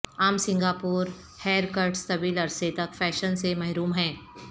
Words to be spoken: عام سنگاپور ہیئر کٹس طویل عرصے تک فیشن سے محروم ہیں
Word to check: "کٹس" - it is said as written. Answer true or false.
true